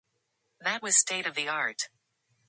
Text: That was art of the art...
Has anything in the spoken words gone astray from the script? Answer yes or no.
yes